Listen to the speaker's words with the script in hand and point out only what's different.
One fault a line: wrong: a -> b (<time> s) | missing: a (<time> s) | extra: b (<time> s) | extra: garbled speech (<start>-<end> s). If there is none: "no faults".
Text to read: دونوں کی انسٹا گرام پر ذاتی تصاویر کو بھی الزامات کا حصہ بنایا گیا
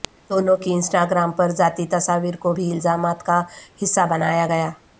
no faults